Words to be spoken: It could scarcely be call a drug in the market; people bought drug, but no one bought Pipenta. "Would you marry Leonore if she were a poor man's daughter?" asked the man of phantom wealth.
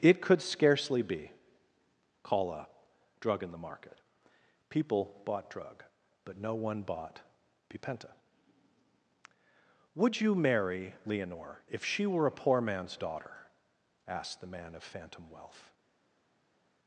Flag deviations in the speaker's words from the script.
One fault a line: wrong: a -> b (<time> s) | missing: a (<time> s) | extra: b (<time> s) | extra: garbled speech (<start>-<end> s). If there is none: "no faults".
no faults